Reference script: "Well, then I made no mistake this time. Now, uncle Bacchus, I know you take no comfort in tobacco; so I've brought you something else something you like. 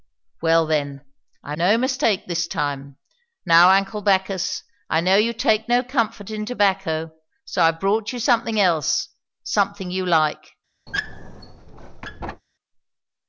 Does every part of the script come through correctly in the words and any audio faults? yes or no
no